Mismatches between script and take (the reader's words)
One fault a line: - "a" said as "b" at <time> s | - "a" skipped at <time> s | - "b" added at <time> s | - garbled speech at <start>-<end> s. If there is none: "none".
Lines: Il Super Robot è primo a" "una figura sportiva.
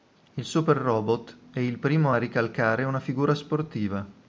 - "il" added at 1.6 s
- "ricalcare" added at 2.2 s